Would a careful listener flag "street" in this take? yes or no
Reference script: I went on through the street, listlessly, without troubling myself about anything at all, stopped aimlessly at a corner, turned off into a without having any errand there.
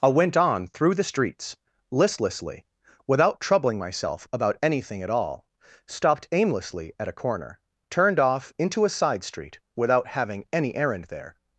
yes